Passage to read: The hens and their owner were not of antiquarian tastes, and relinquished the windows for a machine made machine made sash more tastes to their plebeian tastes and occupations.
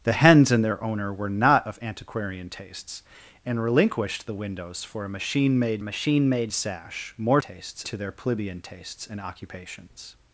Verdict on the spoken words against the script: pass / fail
pass